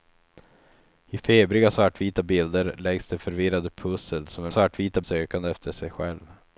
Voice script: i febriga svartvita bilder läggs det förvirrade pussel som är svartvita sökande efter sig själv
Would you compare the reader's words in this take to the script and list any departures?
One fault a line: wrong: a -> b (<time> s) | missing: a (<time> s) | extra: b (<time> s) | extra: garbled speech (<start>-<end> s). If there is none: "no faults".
no faults